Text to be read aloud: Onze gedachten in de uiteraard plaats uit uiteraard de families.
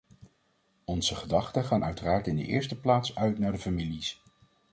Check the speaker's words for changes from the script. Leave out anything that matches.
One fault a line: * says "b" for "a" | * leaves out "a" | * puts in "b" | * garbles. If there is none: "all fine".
* puts in "gaan uiteraard"
* says "eerste" for "uiteraard"
* says "naar" for "uiteraard"